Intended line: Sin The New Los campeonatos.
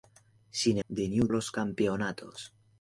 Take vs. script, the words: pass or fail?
pass